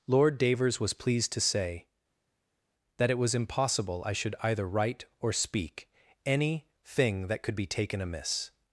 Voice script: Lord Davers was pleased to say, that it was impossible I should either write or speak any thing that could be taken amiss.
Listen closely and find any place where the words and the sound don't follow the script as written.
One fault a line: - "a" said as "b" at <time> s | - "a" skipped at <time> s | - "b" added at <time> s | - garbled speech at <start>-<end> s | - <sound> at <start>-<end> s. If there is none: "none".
none